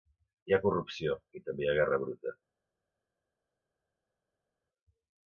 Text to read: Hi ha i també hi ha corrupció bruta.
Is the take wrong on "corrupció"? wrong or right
wrong